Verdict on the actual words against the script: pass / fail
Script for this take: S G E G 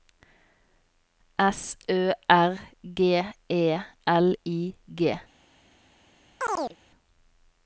fail